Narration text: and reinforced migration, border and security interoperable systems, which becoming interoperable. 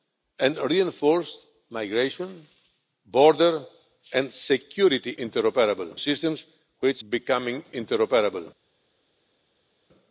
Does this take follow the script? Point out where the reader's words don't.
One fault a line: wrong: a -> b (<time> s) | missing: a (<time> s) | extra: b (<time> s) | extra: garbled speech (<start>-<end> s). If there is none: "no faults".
no faults